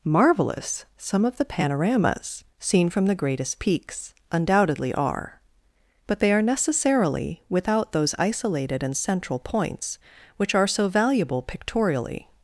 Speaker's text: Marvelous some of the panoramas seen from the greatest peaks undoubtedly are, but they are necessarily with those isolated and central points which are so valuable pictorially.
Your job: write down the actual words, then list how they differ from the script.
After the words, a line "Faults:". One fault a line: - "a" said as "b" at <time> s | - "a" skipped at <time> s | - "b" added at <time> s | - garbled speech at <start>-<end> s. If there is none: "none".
Marvelous some of the panoramas seen from the greatest peaks undoubtedly are, but they are necessarily without those isolated and central points which are so valuable pictorially.
Faults:
- "with" said as "without" at 7.5 s